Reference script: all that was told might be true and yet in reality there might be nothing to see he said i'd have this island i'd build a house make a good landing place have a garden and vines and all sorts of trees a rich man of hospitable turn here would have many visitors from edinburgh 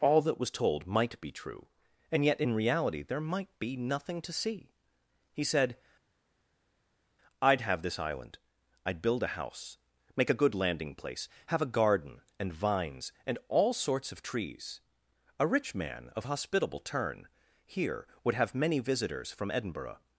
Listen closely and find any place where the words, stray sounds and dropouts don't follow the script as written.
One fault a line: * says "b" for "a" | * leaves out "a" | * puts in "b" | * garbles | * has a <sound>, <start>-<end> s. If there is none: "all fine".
all fine